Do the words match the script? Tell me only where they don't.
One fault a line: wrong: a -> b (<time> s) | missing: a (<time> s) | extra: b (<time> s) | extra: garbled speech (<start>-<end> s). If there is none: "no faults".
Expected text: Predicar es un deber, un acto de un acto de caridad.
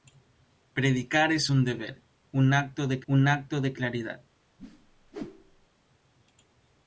no faults